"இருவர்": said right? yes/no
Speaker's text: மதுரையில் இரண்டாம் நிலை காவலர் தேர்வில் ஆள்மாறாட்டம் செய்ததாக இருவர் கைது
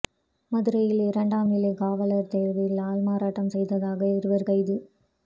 yes